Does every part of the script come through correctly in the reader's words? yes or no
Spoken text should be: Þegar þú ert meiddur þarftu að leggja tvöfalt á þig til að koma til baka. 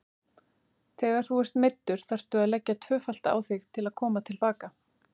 yes